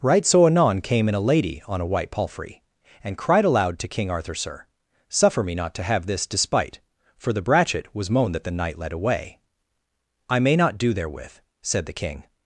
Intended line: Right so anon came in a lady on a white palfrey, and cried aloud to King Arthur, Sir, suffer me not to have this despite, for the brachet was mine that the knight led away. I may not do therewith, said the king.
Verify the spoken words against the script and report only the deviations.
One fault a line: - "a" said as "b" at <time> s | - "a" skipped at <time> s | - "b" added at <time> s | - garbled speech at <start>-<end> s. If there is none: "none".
- "mine" said as "moan" at 8.1 s